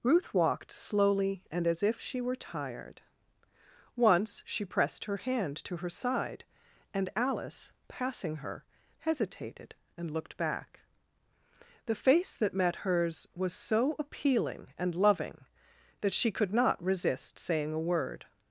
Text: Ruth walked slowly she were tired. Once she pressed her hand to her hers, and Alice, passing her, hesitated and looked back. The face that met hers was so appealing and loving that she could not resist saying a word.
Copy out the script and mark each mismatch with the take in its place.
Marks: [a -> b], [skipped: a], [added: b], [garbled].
Ruth walked slowly [added: and as if] she were tired. Once she pressed her hand to her [hers, -> side] and Alice, passing her, hesitated and looked back. The face that met hers was so appealing and loving that she could not resist saying a word.